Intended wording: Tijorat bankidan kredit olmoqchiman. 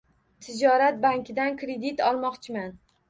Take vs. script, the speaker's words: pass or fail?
pass